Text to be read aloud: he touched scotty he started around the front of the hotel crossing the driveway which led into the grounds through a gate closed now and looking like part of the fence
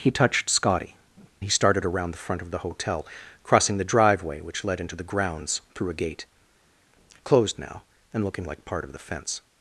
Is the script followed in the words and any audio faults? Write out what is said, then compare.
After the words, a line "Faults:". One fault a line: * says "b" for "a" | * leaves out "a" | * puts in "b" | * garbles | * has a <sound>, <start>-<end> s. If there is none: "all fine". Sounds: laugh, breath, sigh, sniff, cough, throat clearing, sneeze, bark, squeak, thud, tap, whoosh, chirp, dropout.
he touched scotty he started around the front of the hotel crossing the driveway which led into the grounds through a gate closed now and looking like part of the fence
Faults:
all fine